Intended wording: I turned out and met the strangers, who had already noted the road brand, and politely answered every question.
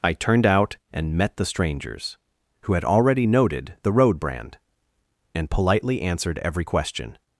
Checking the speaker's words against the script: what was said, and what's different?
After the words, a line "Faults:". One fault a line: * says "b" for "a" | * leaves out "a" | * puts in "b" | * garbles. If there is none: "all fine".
I turned out and met the strangers, who had already noted the road brand, and politely answered every question.
Faults:
all fine